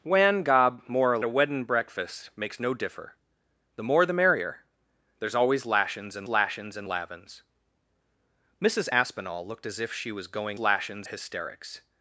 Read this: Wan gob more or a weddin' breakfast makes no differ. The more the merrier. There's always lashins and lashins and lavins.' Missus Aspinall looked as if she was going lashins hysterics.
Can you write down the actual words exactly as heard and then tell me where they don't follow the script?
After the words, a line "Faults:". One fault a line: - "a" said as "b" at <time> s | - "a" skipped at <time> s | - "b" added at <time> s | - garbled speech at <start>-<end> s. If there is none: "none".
Wan gob more or a weddin' breakfast makes no differ. The more the merrier. There's always lashins and lashins and lavins.' Missus Aspinall looked as if she was going lashins hysterics.
Faults:
none